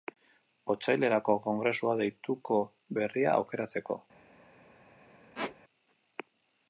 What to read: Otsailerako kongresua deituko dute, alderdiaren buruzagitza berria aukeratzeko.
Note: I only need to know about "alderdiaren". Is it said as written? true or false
false